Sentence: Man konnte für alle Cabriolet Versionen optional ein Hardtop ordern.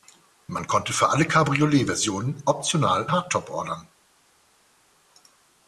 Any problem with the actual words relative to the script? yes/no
yes